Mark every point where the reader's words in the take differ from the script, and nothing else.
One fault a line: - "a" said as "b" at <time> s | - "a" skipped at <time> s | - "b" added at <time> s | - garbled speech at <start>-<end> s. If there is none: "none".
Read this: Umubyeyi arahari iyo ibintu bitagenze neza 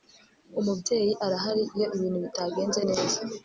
none